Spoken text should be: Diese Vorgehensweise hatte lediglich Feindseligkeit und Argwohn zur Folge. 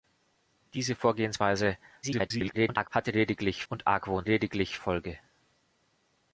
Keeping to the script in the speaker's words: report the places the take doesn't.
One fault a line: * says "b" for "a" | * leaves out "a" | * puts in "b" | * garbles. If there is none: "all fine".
* garbles
* leaves out "Feindseligkeit"
* says "lediglich" for "zur"